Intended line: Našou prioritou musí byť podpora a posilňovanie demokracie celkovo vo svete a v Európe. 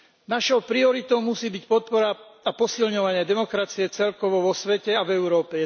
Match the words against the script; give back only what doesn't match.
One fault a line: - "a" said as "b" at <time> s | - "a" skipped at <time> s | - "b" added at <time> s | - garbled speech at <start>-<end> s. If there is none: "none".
none